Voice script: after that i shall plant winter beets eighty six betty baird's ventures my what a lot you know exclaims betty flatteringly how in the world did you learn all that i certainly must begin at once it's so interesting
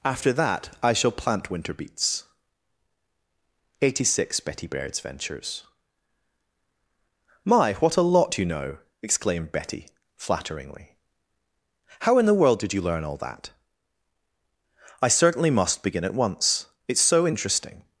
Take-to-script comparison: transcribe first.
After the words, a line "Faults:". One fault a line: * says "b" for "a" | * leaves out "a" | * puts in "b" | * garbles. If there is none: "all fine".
after that i shall plant winter beets eighty six betty baird's ventures my what a lot you know exclaimed betty flatteringly how in the world did you learn all that i certainly must begin at once it's so interesting
Faults:
* says "exclaimed" for "exclaims"